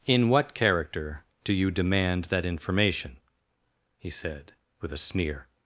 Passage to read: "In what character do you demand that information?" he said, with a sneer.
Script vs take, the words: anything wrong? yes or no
no